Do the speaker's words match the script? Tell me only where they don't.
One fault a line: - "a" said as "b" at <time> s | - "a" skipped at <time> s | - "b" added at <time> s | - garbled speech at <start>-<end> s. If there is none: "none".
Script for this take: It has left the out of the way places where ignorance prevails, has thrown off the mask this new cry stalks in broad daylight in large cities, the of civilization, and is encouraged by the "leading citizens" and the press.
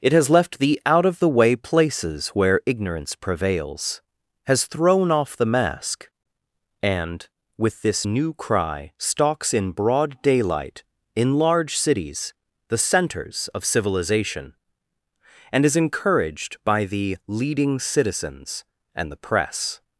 - "and with" added at 6.8 s
- "centers" added at 12.8 s